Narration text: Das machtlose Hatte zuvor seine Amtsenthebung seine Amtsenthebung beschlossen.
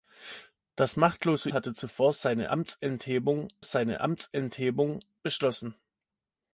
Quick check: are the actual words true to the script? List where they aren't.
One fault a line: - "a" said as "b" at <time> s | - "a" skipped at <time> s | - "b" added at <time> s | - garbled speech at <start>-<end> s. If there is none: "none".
none